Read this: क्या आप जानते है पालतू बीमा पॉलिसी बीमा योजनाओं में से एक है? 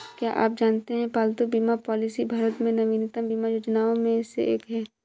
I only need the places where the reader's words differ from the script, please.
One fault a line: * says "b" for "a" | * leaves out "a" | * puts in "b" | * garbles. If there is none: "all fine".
* puts in "भारत में नवीनतम"